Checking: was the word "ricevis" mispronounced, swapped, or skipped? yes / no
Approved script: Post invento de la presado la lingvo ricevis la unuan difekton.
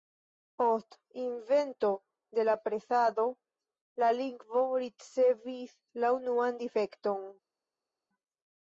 no